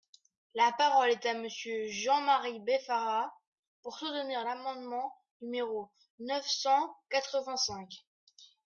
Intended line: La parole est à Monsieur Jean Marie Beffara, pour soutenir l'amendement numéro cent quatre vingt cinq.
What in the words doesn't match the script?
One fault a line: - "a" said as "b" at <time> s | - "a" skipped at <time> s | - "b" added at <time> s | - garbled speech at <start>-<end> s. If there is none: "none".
- "neuf" added at 6.2 s